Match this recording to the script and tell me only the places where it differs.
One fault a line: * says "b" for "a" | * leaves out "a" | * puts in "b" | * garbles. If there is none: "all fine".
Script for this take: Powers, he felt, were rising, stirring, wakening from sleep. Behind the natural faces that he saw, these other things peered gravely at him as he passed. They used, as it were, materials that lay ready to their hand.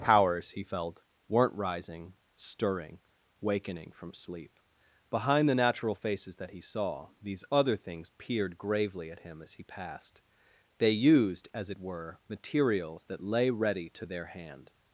* says "weren't" for "were"